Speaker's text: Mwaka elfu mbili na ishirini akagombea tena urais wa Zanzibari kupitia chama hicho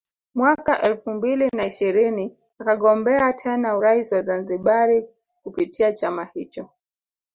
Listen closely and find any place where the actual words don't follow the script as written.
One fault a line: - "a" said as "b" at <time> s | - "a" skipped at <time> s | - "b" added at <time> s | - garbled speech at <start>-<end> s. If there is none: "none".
none